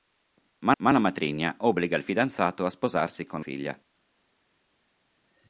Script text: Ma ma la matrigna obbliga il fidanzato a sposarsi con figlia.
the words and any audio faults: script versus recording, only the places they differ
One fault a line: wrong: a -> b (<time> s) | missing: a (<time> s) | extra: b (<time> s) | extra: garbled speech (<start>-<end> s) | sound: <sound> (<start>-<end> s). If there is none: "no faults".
no faults